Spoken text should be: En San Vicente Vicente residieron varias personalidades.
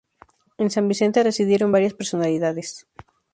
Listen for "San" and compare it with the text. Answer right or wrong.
right